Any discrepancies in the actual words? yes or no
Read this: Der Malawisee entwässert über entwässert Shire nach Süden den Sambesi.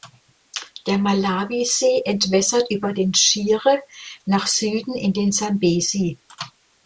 yes